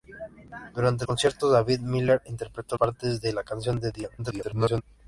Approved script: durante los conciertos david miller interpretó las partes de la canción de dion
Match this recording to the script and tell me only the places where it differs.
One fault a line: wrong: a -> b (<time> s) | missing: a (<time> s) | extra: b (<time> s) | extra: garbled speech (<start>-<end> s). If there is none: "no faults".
missing: los (1.1 s)
missing: las (2.8 s)
extra: garbled speech (4.2-4.8 s)